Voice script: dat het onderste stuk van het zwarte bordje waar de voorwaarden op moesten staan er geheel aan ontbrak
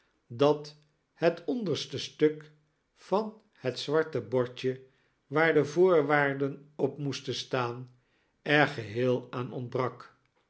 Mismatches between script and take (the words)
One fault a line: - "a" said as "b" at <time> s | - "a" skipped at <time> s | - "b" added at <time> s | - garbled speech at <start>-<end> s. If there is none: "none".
none